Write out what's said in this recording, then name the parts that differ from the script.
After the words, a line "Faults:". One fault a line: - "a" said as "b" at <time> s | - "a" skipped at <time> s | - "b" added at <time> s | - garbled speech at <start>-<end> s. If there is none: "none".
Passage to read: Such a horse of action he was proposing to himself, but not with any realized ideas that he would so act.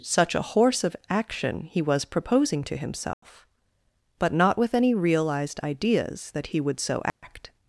Such a horse of action he was proposing to himself, but not with any realized ideas that he would so act.
Faults:
none